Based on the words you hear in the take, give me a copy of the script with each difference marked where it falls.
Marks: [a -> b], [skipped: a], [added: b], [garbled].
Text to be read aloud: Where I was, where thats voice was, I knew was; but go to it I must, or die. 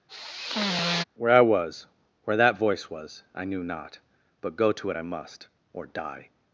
Where I was, where [thats -> that] voice was, I knew [was; -> not] but go to it I must, or die.